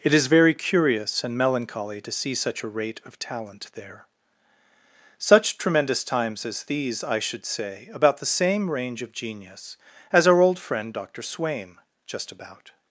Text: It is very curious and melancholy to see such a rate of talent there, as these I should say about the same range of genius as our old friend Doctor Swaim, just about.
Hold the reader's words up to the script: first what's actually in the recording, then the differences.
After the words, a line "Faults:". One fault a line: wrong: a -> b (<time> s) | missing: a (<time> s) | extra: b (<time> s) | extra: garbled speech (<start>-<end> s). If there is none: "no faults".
It is very curious and melancholy to see such a rate of talent there, such tremendous times as these I should say about the same range of genius as our old friend Doctor Swaim, just about.
Faults:
extra: such tremendous times (5.2 s)